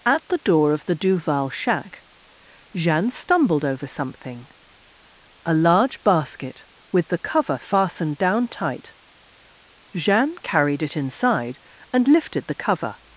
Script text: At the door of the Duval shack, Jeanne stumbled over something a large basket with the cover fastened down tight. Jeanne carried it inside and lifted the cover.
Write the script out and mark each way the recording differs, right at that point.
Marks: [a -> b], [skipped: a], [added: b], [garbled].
At the door of the Duval shack, Jeanne stumbled over something a large basket with the cover fastened down tight. Jeanne carried it inside and lifted the cover.